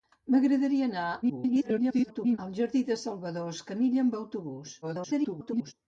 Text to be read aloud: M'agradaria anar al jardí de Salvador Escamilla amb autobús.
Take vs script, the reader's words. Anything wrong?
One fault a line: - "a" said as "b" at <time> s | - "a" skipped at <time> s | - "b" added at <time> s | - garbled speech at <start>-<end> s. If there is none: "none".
- garbled speech at 1.2-2.4 s
- garbled speech at 4.8-5.7 s